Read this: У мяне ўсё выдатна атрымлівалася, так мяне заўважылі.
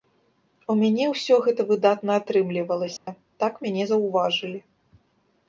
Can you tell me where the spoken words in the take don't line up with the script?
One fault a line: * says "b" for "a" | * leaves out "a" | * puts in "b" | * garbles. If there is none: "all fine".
* puts in "гэта"